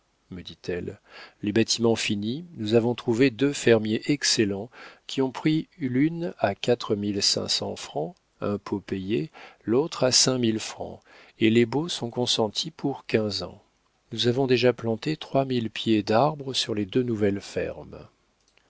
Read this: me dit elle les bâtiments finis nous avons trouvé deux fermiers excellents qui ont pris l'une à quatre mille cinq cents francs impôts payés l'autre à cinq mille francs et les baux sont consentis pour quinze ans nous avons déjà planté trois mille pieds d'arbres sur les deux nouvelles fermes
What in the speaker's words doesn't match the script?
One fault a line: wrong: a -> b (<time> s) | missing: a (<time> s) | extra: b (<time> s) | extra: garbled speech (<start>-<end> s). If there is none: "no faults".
no faults